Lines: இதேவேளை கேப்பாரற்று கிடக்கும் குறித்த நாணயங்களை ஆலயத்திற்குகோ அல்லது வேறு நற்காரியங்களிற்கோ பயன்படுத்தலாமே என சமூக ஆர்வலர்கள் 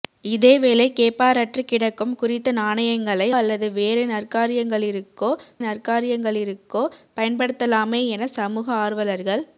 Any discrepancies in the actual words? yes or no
yes